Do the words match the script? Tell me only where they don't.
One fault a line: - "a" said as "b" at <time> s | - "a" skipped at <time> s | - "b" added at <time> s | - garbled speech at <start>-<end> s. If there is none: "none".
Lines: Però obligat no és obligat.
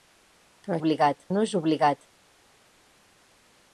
none